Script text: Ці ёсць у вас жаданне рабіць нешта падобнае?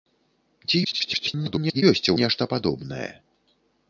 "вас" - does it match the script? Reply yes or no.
no